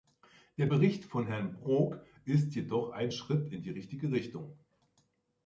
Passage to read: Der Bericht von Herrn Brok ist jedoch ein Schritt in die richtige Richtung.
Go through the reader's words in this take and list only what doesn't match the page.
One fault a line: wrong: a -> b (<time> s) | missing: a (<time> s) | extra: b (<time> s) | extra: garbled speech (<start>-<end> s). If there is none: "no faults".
no faults